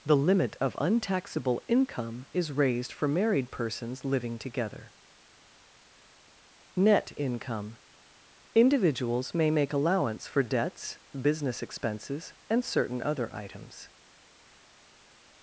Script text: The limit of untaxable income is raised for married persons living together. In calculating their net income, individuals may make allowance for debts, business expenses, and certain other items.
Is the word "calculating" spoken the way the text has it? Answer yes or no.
no